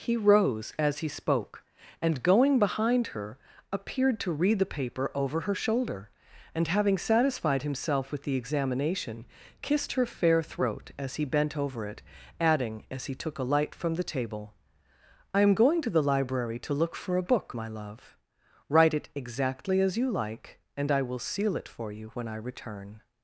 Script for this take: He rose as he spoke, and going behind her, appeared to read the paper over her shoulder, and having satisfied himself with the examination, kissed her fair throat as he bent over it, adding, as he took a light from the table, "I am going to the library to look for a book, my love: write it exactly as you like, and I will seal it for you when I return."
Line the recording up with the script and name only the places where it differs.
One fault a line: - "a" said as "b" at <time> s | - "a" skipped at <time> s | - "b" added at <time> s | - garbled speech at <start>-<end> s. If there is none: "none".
none